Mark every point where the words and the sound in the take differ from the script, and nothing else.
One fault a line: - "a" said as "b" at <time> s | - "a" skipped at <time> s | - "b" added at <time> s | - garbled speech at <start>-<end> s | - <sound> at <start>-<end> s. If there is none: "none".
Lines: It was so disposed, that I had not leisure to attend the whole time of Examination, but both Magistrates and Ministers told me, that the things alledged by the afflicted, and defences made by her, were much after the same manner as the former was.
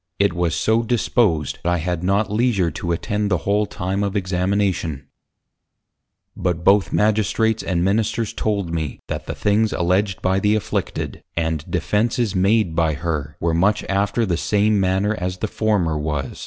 - "that" skipped at 1.6 s